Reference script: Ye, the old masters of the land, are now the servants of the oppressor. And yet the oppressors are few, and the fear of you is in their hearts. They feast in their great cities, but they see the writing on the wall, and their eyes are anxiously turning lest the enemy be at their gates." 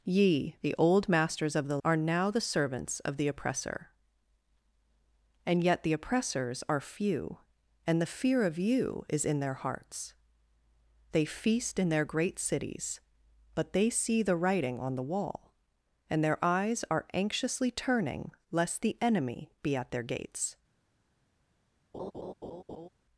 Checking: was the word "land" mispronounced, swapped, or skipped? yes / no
yes